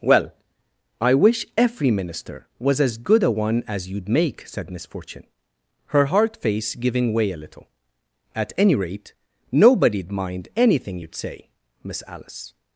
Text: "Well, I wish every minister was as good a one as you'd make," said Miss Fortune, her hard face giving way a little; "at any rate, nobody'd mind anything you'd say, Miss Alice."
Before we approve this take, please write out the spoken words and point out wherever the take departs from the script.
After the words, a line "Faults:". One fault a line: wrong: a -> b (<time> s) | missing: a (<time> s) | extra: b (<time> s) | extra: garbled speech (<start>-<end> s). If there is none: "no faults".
"Well, I wish every minister was as good a one as you'd make," said Miss Fortune, her hard face giving way a little; "at any rate, nobody'd mind anything you'd say, Miss Alice."
Faults:
no faults